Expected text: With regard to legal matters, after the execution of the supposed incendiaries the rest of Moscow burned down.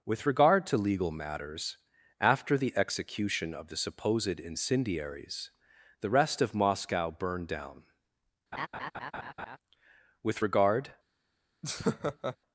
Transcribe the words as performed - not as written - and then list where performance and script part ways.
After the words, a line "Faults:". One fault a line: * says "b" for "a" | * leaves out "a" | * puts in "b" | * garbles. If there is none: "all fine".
With regard to legal matters, after the execution of the supposed incendiaries the rest of Moscow burned down. With regard
Faults:
* puts in "With regard"